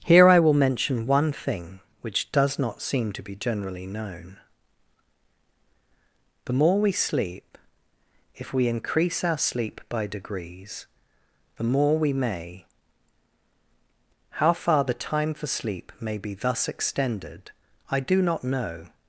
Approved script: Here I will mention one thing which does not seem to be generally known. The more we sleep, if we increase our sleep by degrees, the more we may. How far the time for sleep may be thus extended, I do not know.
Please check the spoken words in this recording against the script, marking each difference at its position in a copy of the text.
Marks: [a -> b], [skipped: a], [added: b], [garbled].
Here I will mention one thing which does not seem to be generally known. The more we sleep, if we increase our sleep by degrees, the more we may. How far the time for sleep may be thus extended, I do not know.